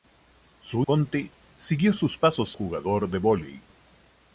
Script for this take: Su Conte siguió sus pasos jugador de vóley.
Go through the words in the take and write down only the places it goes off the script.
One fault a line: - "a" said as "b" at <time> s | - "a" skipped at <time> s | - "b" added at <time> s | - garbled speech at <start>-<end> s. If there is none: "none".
none